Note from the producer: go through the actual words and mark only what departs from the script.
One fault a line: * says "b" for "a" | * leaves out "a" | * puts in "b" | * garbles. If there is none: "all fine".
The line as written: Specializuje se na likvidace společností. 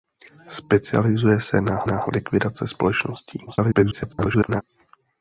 * puts in "na"
* garbles